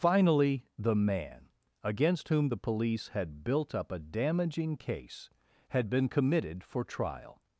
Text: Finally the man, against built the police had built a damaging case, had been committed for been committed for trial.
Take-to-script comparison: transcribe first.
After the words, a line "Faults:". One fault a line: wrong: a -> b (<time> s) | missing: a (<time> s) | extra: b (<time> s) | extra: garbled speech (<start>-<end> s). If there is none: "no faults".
Finally the man, against whom the police had built up a damaging case, had been committed for trial.
Faults:
wrong: built -> whom (2.3 s)
extra: up (3.7 s)
missing: been committed for (6.8 s)